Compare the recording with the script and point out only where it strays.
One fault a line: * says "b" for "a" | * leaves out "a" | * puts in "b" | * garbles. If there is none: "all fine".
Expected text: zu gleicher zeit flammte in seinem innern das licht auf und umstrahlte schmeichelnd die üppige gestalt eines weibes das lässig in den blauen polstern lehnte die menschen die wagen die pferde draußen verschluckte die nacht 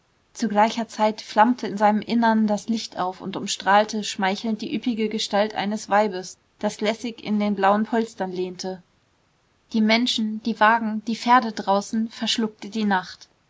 all fine